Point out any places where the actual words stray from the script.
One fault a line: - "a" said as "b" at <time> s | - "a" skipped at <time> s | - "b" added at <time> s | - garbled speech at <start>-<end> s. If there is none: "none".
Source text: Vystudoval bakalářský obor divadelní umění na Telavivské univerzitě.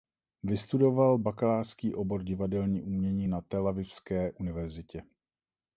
none